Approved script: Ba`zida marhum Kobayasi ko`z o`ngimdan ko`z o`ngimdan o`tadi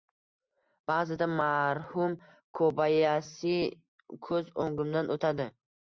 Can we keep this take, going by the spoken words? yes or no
no